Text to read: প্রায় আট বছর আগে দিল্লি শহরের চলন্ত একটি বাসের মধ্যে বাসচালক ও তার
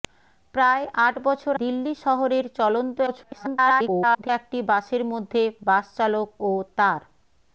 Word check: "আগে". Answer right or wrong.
wrong